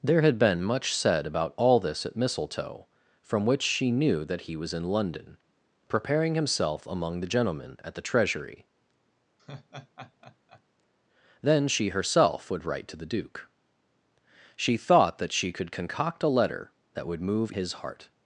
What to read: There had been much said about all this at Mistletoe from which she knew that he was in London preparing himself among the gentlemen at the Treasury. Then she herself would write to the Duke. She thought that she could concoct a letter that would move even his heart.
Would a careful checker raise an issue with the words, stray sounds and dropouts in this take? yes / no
yes